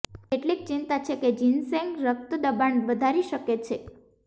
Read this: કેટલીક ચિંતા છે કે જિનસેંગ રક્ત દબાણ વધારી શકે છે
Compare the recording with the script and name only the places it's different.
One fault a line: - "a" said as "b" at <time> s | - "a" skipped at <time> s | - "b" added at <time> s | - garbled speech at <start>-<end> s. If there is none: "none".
none